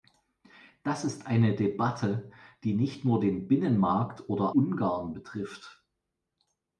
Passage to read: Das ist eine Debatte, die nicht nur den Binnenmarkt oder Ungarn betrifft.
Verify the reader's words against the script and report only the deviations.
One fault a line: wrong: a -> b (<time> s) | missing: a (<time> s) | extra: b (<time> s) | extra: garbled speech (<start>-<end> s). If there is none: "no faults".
no faults